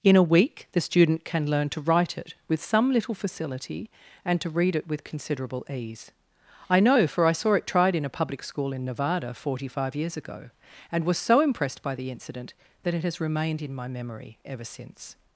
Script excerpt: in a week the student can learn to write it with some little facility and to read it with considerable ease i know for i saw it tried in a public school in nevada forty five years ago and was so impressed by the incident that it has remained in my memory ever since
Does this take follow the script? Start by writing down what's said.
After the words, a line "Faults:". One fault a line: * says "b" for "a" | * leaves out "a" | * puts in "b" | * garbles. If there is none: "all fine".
in a week the student can learn to write it with some little facility and to read it with considerable ease i know for i saw it tried in a public school in nevada forty five years ago and was so impressed by the incident that it has remained in my memory ever since
Faults:
all fine